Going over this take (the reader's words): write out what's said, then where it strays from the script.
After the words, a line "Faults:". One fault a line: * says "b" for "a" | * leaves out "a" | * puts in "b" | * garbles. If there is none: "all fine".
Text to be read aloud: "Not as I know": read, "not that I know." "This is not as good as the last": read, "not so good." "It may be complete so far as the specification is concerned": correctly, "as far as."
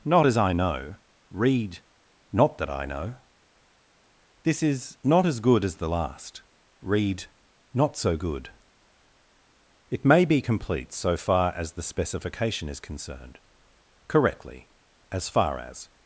"Not as I know": read, "not that I know." "This is not as good as the last": read, "not so good." "It may be complete so far as the specification is concerned": correctly, "as far as."
Faults:
all fine